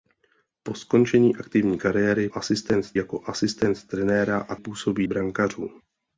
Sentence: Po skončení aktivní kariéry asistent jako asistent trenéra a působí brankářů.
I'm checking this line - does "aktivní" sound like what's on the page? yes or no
yes